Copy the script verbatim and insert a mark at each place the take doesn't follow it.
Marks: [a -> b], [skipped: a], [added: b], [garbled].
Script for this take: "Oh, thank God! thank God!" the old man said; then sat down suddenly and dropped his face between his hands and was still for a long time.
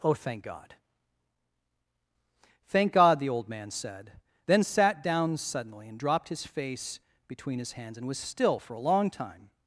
"Oh, thank God! thank God!" the old man said; then sat down suddenly and dropped his face between his hands and was still for a long time.